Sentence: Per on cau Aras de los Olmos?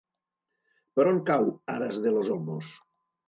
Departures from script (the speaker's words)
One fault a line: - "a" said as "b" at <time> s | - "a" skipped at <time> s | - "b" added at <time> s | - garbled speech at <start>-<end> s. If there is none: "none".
none